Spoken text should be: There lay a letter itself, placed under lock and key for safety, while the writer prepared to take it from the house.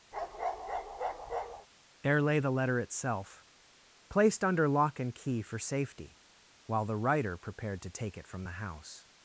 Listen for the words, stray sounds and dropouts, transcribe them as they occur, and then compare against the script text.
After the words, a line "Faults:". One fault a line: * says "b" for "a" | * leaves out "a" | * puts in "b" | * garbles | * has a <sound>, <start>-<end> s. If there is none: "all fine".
There lay the letter itself, placed under lock and key for safety, while the writer prepared to take it from the house.
Faults:
* has a bark, 0.1-1.7 s
* says "the" for "a"